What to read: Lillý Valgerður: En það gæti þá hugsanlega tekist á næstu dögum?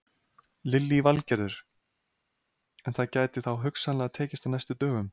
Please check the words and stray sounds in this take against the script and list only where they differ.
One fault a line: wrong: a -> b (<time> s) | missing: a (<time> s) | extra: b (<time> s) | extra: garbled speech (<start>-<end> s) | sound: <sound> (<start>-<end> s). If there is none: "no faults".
no faults